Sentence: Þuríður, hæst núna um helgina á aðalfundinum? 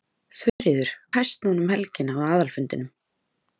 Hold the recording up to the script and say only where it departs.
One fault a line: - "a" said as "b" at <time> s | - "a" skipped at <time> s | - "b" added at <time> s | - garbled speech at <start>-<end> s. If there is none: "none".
none